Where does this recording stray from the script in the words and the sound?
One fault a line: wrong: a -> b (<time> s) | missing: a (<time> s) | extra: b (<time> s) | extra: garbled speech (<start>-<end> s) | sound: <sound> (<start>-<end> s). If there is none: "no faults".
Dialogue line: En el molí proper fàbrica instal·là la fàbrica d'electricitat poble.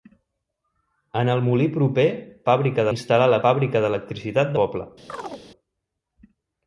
sound: chirp (5.1-5.4 s)